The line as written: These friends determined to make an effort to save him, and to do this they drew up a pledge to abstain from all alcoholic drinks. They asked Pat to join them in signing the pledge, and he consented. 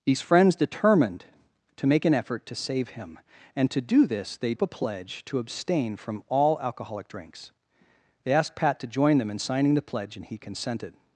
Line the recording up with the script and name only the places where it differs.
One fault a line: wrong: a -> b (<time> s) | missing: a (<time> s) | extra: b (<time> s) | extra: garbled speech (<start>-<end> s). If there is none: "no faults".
missing: drew (4.5 s)